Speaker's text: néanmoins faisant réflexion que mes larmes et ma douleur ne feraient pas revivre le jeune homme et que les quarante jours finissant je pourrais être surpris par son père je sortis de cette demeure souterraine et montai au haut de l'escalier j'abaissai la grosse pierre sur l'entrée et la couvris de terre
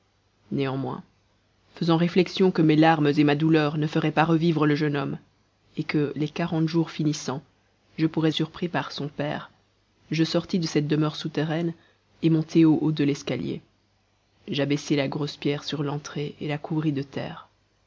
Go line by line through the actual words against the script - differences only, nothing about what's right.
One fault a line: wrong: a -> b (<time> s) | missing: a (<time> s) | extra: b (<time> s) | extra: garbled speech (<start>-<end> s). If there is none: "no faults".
missing: être (8.3 s)